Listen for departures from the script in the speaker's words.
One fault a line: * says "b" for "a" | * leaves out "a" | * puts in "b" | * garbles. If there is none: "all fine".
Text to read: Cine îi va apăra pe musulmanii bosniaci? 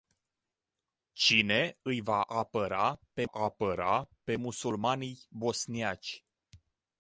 * puts in "apăra pe"